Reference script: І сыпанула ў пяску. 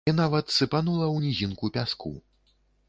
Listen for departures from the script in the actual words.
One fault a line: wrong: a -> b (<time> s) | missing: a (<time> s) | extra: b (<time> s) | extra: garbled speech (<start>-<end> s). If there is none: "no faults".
extra: нават (0.2 s)
extra: нізінку (1.2 s)